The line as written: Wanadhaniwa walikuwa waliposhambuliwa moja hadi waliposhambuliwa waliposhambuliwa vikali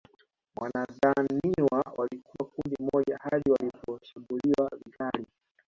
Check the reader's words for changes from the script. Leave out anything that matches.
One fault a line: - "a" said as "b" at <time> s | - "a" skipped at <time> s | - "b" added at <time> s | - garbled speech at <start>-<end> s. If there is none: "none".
- "waliposhambuliwa" said as "kundi" at 2.5 s
- "waliposhambuliwa" skipped at 4.7 s